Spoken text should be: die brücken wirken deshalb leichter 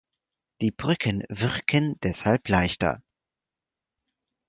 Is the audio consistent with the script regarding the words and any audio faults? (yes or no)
yes